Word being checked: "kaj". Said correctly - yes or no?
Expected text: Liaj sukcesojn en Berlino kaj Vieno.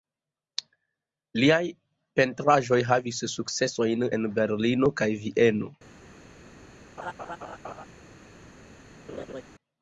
yes